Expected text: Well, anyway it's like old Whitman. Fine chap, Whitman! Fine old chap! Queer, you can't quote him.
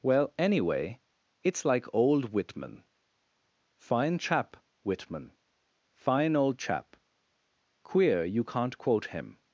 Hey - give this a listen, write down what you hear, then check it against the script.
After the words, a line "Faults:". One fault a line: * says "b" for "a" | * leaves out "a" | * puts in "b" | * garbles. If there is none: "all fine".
Well, anyway it's like old Whitman. Fine chap, Whitman! Fine old chap! Queer, you can't quote him.
Faults:
all fine